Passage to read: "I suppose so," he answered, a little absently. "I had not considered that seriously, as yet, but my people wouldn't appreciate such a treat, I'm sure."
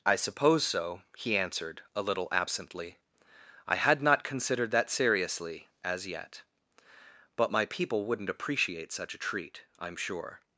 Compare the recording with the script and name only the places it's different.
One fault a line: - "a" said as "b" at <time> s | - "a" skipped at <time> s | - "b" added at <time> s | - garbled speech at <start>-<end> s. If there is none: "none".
none